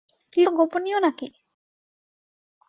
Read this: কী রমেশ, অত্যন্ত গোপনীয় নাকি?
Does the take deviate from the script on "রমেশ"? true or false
true